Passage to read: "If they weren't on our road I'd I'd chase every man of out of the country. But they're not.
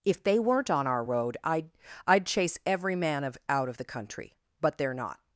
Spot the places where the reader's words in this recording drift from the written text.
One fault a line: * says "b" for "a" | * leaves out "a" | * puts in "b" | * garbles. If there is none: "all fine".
all fine